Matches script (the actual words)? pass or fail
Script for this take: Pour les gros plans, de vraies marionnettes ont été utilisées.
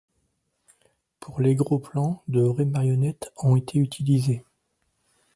pass